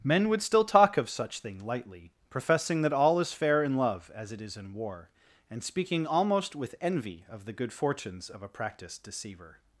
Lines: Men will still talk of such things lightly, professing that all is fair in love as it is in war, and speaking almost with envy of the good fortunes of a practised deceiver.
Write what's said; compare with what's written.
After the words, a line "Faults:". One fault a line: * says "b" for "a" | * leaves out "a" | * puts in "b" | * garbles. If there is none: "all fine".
Men would still talk of such thing lightly, professing that all is fair in love as it is in war, and speaking almost with envy of the good fortunes of a practised deceiver.
Faults:
* says "would" for "will"
* says "thing" for "things"